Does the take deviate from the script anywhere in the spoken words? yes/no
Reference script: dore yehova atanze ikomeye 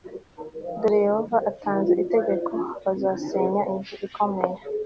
yes